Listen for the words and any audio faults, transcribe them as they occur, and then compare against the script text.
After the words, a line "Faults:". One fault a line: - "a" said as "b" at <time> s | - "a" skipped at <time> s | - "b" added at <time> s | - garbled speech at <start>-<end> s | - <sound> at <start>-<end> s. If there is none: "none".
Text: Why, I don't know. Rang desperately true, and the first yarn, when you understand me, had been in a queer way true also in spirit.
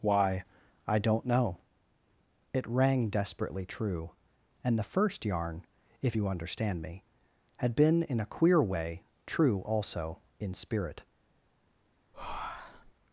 Why, I don't know. It rang desperately true, and the first yarn, if you understand me, had been in a queer way true also in spirit.
Faults:
- "It" added at 2.5 s
- "when" said as "if" at 6.0 s
- breath at 12.1-12.9 s